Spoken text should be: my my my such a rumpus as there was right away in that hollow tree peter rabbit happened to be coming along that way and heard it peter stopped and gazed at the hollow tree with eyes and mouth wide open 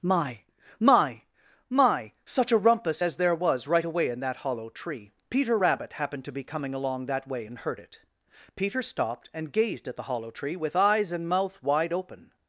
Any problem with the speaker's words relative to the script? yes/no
no